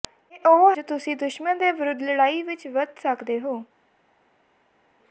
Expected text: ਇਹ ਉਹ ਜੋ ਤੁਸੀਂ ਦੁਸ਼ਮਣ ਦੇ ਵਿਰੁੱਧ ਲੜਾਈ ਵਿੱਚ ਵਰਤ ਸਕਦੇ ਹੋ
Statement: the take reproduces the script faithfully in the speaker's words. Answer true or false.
true